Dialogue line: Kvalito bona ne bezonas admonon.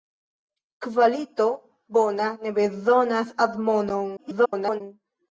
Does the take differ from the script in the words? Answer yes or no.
yes